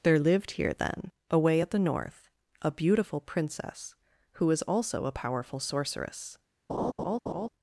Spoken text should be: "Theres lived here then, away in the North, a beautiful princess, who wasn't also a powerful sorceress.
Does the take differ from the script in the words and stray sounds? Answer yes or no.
yes